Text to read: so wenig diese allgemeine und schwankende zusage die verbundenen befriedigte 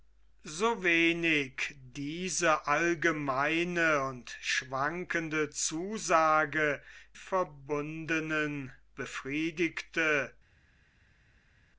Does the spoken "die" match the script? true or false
false